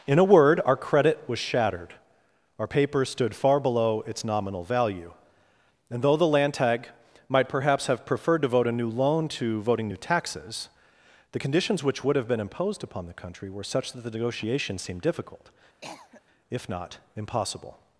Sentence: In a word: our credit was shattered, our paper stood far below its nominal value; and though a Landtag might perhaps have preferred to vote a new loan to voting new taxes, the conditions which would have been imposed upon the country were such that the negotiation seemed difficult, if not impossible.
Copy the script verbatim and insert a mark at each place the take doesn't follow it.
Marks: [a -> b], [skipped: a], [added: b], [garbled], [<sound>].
In a word: our credit was shattered, our paper stood far below its nominal value; and though [a -> the] Landtag might perhaps have preferred to vote a new loan to voting new taxes, the conditions which would have been imposed upon the country were such that the negotiation seemed difficult, [cough] if not impossible.